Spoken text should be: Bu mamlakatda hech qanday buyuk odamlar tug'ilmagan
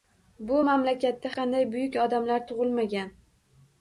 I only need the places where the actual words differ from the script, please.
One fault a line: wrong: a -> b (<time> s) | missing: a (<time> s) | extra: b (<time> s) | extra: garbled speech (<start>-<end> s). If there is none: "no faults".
missing: hech (1.3 s)